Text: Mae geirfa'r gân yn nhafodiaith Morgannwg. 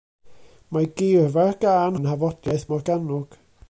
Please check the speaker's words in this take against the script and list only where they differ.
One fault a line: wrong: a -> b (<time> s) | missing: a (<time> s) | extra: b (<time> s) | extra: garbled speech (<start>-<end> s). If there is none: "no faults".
no faults